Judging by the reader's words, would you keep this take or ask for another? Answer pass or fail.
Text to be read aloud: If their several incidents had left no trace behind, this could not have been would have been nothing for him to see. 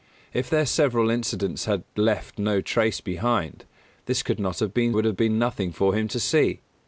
pass